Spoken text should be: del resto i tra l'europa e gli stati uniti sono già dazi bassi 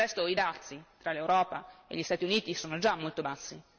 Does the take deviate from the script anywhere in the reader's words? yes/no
yes